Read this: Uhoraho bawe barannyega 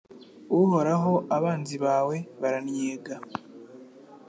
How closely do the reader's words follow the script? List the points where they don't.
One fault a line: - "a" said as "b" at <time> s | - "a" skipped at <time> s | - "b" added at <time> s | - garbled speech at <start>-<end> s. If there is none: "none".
- "abanzi" added at 1.4 s